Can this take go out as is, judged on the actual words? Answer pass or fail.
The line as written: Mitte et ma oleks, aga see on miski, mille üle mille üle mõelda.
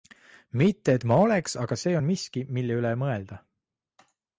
fail